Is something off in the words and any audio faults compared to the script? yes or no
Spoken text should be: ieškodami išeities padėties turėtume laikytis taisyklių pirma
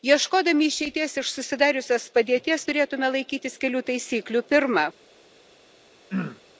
yes